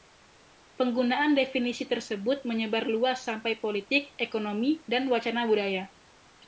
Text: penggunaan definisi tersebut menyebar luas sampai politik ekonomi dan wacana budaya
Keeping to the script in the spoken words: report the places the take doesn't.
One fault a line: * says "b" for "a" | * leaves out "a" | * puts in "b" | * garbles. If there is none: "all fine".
all fine